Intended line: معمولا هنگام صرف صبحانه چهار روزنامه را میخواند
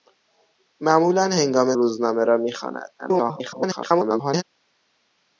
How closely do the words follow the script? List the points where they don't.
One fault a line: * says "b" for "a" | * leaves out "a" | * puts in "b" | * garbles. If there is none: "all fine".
* leaves out "صرف صبحانه چهار"
* garbles